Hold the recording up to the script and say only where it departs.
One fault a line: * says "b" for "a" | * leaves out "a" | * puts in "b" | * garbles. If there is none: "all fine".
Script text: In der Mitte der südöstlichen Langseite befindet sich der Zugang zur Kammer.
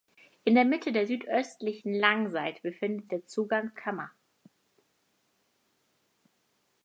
* leaves out "sich"
* leaves out "zur"